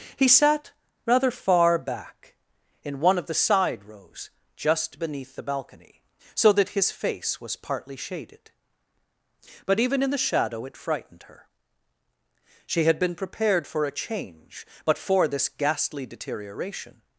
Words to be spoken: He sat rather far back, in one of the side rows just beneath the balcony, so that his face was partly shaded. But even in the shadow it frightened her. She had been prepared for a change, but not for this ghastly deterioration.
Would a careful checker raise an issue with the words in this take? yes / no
yes